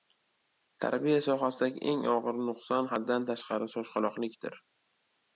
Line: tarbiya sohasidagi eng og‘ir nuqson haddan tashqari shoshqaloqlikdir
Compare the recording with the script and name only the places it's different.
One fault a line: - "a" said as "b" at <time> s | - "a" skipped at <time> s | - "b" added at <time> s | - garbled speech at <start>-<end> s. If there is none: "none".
none